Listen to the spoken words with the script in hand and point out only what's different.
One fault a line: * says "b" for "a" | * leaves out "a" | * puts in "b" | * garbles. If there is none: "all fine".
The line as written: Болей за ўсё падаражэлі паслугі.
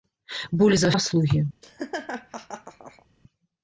* leaves out "ўсё падаражэлі"